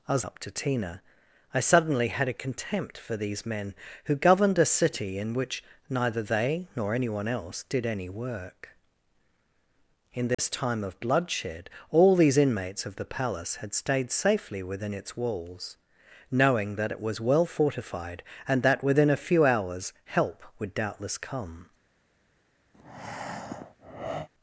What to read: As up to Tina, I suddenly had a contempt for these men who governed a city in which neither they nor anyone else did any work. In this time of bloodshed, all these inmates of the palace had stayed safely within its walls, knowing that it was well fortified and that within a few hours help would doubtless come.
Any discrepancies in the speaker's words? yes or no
no